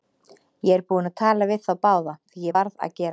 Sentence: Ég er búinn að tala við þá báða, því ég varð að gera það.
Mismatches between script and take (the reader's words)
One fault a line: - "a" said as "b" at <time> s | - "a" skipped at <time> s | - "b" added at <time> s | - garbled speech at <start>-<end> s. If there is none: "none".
none